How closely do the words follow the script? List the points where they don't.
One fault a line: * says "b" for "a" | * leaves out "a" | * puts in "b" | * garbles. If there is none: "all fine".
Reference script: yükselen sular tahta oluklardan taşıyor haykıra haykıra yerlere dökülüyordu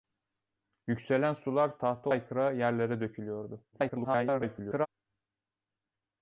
* leaves out "oluklardan taşıyor haykıra"
* garbles